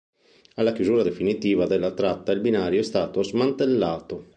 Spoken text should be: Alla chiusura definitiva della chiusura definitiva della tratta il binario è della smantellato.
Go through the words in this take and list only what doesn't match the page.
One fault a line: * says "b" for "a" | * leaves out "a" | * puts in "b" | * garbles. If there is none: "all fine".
* leaves out "chiusura definitiva della"
* says "stato" for "della"